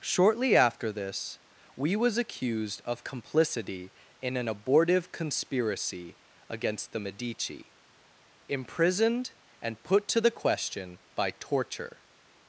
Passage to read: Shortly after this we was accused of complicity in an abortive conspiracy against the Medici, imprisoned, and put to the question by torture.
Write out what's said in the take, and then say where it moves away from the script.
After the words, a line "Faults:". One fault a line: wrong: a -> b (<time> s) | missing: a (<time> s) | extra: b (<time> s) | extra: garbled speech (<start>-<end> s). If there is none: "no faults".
Shortly after this we was accused of complicity in an abortive conspiracy against the Medici, imprisoned, and put to the question by torture.
Faults:
no faults